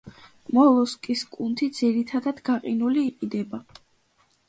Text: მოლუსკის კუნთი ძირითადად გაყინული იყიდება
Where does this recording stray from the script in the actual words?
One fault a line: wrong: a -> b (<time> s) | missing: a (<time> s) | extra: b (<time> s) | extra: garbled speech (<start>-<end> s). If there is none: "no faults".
no faults